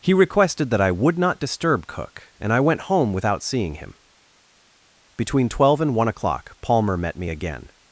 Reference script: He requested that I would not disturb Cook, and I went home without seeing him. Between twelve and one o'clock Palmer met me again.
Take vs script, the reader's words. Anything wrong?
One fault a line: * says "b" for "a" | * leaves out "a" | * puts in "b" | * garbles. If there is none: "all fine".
all fine